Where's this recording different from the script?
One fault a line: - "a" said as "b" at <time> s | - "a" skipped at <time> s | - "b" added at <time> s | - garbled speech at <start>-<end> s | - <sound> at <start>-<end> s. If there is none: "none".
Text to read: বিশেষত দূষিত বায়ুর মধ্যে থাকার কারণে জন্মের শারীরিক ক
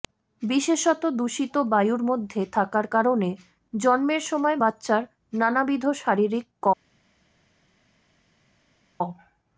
- "সময় বাচ্চার নানাবিধ" added at 4.3 s